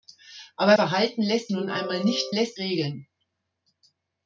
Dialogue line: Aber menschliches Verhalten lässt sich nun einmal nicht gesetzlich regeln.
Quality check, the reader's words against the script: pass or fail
fail